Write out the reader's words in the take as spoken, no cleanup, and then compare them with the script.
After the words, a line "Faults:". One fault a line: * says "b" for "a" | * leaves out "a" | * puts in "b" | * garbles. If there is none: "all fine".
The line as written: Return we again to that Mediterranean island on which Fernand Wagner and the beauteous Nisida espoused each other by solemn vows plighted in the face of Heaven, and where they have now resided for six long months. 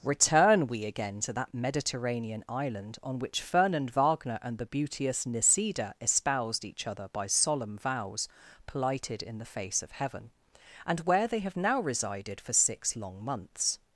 Return we again to that Mediterranean island on which Fernand Wagner and the beauteous Nisida espoused each other by solemn vows plighted in the face of Heaven, and where they have now resided for six long months.
Faults:
all fine